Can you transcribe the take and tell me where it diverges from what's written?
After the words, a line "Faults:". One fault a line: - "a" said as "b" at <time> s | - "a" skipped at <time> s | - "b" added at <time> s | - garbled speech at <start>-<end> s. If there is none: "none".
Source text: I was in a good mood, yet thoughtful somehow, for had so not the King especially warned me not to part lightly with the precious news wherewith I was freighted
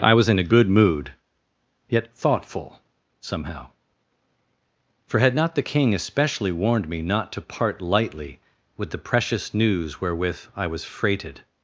I was in a good mood, yet thoughtful somehow, for had not the King especially warned me not to part lightly with the precious news wherewith I was freighted
Faults:
- "so" skipped at 5.3 s